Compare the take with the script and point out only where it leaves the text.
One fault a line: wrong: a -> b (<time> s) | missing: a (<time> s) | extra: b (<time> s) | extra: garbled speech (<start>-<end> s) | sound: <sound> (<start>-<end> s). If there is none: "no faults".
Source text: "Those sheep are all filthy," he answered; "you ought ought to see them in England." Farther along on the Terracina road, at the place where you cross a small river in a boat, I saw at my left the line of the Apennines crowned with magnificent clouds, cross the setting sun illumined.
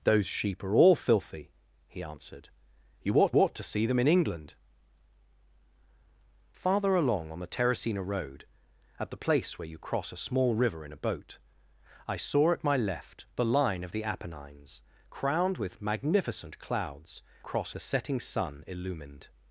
no faults